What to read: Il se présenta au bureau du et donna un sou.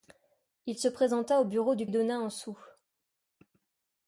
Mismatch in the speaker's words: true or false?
false